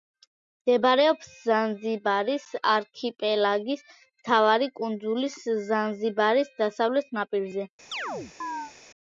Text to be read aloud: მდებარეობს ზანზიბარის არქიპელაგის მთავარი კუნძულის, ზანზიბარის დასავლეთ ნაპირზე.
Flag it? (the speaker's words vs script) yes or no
no